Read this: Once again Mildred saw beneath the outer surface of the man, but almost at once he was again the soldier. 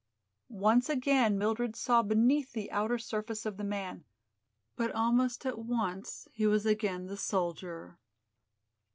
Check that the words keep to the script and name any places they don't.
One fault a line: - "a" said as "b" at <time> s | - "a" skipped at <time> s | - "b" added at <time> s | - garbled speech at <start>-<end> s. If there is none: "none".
none